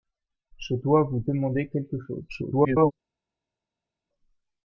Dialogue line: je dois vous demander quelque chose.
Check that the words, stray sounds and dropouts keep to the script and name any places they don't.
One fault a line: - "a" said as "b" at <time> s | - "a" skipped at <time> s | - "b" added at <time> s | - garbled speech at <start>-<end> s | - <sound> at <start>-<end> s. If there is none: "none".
- garbled speech at 2.3-2.9 s